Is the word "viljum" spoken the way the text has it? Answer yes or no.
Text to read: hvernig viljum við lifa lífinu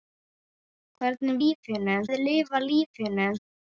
no